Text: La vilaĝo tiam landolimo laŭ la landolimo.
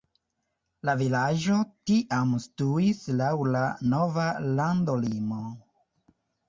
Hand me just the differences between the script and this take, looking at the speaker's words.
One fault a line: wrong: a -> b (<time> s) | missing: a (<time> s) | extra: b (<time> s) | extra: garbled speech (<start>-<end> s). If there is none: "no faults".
wrong: landolimo -> situis (2.5 s)
extra: nova (3.9 s)